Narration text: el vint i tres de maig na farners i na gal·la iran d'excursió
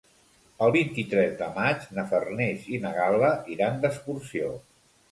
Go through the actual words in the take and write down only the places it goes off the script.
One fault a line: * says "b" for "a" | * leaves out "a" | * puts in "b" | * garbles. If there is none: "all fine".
all fine